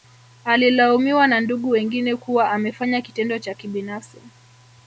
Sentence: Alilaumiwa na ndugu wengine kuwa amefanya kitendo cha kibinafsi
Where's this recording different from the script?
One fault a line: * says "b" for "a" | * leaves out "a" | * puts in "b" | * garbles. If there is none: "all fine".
all fine